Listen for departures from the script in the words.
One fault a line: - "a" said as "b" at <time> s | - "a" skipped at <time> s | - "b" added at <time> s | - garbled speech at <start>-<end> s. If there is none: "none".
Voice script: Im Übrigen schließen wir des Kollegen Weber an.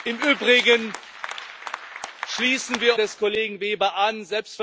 none